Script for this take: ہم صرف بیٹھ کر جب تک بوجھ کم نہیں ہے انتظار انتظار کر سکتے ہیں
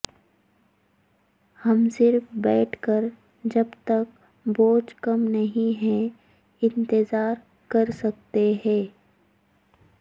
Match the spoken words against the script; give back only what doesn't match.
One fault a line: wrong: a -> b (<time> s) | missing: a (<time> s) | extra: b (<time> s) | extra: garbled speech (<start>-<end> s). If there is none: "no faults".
missing: انتظار (7.3 s)